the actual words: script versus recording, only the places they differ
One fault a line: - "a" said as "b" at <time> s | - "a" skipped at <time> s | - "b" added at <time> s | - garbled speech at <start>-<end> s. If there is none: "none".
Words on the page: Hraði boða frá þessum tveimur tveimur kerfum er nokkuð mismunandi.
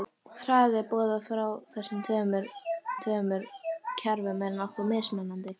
none